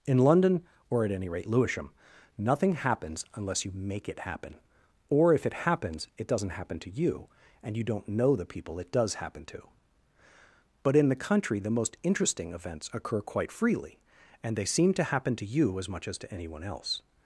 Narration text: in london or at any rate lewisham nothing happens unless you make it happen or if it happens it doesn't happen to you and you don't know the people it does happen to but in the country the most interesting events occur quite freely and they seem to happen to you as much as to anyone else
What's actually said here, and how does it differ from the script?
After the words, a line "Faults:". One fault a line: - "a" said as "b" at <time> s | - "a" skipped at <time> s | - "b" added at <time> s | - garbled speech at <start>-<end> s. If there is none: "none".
in london or at any rate lewisham nothing happens unless you make it happen or if it happens it doesn't happen to you and you don't know the people it does happen to but in the country the most interesting events occur quite freely and they seem to happen to you as much as to anyone else
Faults:
none